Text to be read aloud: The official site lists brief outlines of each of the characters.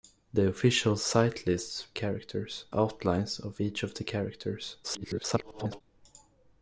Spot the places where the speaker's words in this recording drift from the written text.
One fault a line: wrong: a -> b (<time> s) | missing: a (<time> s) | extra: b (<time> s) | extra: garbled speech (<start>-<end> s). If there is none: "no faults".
wrong: brief -> characters (1.9 s)
extra: garbled speech (4.8-5.8 s)